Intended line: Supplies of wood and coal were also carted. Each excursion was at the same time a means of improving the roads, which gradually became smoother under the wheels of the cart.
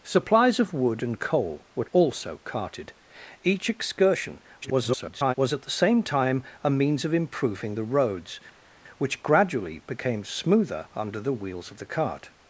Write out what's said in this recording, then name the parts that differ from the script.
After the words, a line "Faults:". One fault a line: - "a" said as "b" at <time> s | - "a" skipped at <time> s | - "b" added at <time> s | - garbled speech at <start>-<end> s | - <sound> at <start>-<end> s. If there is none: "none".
Supplies of wood and coal were also carted. Each excursion [garbled] was at the same time a means of improving the roads, which gradually became smoother under the wheels of the cart.
Faults:
- garbled speech at 4.6-5.3 s